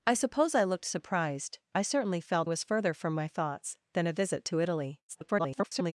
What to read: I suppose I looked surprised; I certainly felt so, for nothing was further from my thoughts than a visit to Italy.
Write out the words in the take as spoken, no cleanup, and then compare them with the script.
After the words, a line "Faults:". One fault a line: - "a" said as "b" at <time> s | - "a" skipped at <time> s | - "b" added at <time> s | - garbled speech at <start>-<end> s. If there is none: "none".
I suppose I looked surprised; I certainly felt was further from my thoughts than a visit to Italy. [garbled]
Faults:
- "so for nothing" skipped at 2.5 s
- garbled speech at 5.1-5.9 s